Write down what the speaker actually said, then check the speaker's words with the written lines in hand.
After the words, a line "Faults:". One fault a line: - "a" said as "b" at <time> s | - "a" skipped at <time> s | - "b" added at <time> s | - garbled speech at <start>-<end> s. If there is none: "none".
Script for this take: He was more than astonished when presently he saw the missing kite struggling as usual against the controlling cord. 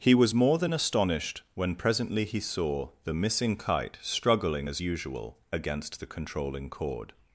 He was more than astonished when presently he saw the missing kite struggling as usual against the controlling cord.
Faults:
none